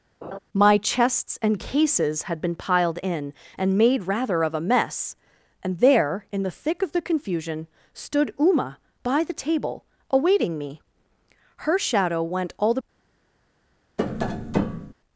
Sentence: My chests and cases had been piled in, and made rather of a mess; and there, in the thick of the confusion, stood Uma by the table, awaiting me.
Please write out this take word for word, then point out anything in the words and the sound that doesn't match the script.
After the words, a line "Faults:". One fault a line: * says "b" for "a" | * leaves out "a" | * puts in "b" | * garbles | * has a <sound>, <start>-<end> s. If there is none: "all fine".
My chests and cases had been piled in, and made rather of a mess; and there, in the thick of the confusion, stood Uma by the table, awaiting me. Her shadow went all the
Faults:
* has a laugh, 0.2-0.4 s
* puts in "Her shadow went all the"
* has a tap, 14.0-14.9 s